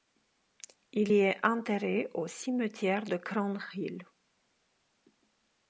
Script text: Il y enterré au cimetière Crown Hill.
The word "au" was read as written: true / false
true